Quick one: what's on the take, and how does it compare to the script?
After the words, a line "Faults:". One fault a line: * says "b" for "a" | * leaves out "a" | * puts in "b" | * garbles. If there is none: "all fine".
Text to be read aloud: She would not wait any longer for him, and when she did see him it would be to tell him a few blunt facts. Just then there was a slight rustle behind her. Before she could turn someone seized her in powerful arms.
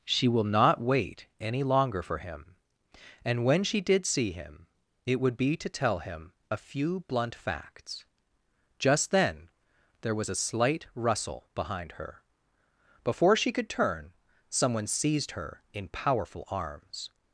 She will not wait any longer for him, and when she did see him it would be to tell him a few blunt facts. Just then there was a slight rustle behind her. Before she could turn someone seized her in powerful arms.
Faults:
* says "will" for "would"